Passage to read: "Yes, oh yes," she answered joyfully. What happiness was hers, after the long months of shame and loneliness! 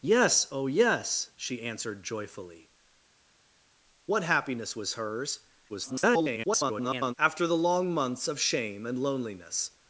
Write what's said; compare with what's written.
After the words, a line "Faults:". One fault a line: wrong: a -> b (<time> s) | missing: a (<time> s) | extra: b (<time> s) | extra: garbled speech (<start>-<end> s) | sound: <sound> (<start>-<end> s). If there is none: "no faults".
"Yes, oh yes," she answered joyfully. What happiness was hers, [garbled] after the long months of shame and loneliness!
Faults:
extra: garbled speech (5.7-7.1 s)